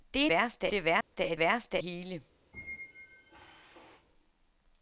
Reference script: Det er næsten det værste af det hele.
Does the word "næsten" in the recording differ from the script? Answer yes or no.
yes